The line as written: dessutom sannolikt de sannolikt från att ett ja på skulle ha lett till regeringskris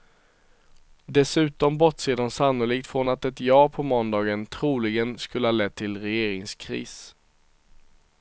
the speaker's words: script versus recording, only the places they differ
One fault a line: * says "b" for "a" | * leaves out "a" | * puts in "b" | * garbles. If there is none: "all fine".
* says "bortser" for "sannolikt"
* puts in "måndagen troligen"